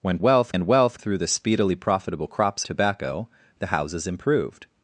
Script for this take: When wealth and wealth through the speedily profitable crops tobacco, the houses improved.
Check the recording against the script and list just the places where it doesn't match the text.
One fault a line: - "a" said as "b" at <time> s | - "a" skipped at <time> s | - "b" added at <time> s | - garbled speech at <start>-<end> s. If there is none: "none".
none